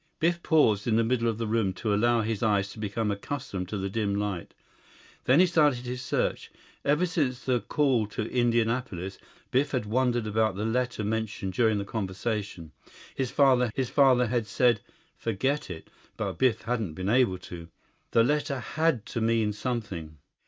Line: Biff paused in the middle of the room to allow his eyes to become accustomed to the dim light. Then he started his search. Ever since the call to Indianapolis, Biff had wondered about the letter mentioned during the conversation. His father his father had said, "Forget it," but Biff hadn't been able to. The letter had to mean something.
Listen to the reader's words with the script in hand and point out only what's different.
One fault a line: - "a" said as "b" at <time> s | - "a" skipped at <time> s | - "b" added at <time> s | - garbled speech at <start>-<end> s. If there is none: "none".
none